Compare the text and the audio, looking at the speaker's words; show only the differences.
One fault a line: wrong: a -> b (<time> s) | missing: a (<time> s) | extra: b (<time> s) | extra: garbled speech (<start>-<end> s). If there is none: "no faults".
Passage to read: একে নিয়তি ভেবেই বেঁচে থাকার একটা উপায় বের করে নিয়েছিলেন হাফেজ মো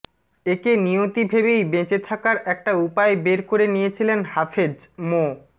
no faults